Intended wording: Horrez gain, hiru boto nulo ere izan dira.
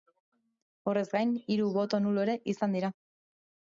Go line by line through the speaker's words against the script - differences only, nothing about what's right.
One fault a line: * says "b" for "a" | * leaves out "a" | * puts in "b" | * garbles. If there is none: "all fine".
all fine